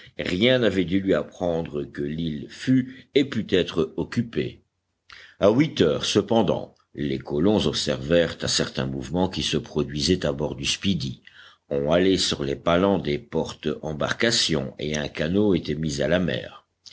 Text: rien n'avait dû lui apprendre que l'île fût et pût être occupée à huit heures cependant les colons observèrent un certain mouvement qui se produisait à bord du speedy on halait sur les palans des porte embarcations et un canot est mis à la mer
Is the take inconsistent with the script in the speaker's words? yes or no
yes